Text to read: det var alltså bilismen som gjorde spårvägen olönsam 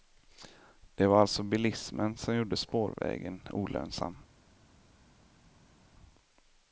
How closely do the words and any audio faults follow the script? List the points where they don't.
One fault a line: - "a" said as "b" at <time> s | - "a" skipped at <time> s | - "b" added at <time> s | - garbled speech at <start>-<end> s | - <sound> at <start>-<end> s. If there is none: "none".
none